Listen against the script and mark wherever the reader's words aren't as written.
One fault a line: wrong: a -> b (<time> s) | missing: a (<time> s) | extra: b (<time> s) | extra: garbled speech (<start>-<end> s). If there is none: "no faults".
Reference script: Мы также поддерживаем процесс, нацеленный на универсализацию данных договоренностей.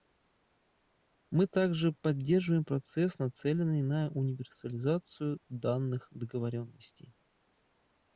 no faults